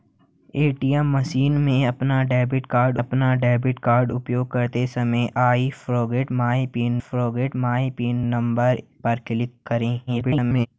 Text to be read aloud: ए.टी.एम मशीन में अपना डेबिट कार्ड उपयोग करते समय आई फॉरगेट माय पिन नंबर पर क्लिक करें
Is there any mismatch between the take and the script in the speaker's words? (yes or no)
yes